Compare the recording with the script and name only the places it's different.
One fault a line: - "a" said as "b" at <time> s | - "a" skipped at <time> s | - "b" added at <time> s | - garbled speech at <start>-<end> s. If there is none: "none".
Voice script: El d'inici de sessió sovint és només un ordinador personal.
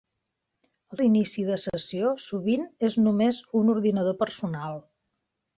none